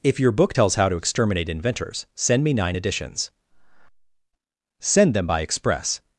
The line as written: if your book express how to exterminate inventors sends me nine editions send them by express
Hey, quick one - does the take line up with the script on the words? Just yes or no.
no